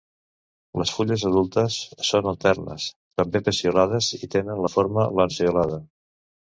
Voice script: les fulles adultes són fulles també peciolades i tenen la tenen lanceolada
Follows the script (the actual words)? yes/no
no